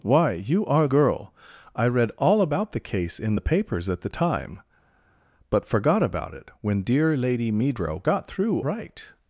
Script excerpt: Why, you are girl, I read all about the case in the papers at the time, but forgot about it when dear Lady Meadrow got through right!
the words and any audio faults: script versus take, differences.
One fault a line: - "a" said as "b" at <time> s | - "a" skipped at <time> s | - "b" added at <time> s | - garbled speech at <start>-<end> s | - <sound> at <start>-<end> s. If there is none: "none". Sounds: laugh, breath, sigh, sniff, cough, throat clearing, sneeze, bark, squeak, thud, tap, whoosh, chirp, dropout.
none